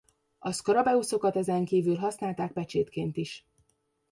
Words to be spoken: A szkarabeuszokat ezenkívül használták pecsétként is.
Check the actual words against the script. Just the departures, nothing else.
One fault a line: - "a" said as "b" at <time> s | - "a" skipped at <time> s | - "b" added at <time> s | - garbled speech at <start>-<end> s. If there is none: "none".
none